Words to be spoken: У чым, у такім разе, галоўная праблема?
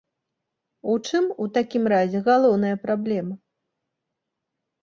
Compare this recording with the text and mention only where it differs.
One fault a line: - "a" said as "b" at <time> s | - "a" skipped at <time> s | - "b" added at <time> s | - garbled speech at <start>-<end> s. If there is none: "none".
none